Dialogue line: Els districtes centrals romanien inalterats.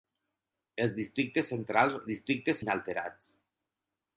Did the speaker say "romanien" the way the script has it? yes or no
no